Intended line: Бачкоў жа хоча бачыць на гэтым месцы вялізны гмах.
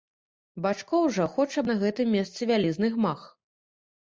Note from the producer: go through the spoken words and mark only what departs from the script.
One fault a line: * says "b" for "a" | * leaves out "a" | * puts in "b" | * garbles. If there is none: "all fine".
* leaves out "бачыць"